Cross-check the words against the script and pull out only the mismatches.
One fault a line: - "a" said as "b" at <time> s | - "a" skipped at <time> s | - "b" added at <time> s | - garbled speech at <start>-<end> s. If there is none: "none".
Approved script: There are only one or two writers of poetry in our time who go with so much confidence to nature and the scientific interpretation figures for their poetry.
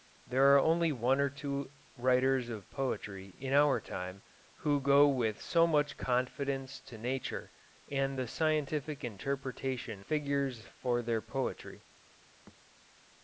none